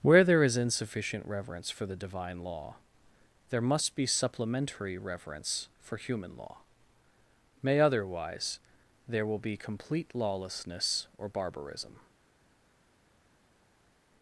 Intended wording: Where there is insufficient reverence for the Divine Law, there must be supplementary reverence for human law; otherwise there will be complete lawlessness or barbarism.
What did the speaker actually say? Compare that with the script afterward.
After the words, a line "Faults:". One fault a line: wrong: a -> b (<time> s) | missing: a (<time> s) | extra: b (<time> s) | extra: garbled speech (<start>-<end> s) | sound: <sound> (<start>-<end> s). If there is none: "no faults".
Where there is insufficient reverence for the Divine Law, there must be supplementary reverence for human law; may otherwise there will be complete lawlessness or barbarism.
Faults:
extra: may (7.6 s)